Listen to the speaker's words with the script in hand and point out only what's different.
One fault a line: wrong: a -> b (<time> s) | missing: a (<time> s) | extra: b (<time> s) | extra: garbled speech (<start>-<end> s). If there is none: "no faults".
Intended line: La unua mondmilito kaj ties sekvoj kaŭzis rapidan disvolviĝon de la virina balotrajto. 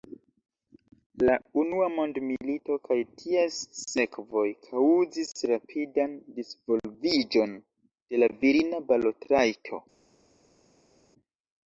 no faults